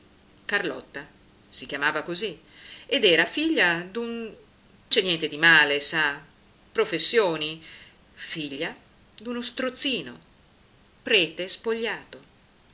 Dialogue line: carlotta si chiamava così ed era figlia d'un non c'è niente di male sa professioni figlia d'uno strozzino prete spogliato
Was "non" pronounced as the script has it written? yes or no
no